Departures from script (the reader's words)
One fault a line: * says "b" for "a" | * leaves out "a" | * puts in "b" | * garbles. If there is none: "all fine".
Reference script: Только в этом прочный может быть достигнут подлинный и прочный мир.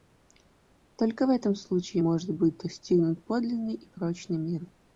* says "случае" for "прочный"